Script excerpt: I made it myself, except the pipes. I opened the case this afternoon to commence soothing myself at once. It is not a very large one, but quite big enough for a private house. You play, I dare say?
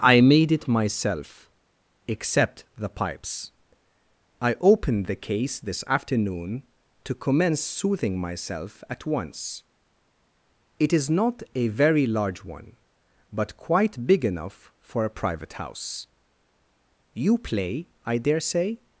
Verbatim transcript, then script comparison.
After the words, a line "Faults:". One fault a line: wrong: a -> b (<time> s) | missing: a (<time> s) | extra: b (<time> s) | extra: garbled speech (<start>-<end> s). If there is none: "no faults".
I made it myself, except the pipes. I opened the case this afternoon to commence soothing myself at once. It is not a very large one, but quite big enough for a private house. You play, I dare say?
Faults:
no faults